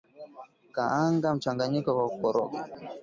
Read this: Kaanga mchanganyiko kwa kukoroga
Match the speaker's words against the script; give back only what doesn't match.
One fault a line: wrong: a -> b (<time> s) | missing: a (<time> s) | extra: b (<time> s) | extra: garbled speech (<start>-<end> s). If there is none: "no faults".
no faults